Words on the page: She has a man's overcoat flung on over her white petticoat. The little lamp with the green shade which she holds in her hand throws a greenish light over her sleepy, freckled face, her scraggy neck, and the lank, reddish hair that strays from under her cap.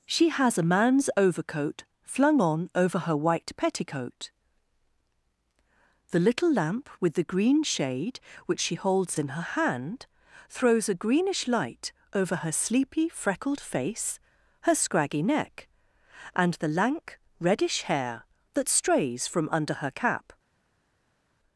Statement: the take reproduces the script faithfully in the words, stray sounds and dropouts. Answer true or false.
true